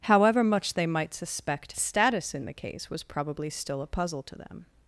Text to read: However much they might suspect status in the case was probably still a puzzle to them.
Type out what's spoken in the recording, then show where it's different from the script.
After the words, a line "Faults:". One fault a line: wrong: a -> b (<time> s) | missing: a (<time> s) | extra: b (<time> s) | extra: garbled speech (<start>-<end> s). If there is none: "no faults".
However much they might suspect status in the case was probably still a puzzle to them.
Faults:
no faults